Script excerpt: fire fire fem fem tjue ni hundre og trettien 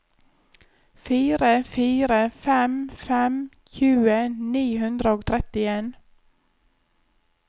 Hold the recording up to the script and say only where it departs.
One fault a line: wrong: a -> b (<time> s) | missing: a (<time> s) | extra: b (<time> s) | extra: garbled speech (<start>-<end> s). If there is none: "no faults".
no faults